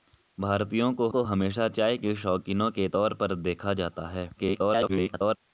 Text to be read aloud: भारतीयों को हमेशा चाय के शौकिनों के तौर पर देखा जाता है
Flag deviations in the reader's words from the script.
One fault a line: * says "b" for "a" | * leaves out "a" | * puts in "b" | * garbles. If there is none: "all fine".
* puts in "को"
* garbles